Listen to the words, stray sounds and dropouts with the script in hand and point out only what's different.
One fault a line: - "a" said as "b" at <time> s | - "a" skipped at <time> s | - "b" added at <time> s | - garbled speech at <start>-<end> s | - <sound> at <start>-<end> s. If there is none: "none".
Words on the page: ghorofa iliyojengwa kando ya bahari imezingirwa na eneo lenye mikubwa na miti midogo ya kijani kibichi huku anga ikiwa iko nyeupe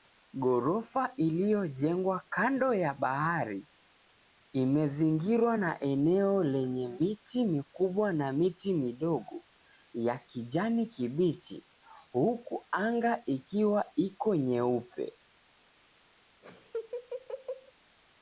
- "miti" added at 6.9 s
- laugh at 16.4-17.7 s